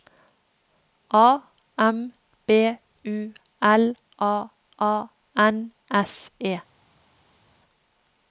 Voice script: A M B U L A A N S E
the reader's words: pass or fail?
pass